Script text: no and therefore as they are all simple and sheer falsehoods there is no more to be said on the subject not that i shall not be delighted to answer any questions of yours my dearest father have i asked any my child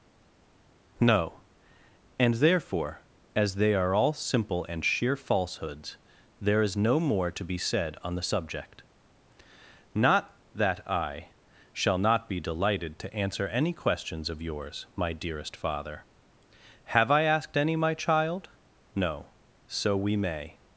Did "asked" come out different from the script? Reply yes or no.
no